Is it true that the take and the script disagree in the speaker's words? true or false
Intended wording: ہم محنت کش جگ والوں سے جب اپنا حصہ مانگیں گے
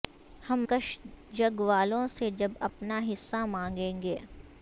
true